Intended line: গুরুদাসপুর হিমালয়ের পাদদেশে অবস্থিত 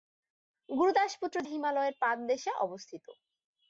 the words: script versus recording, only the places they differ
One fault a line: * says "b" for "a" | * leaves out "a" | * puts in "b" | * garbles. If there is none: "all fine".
all fine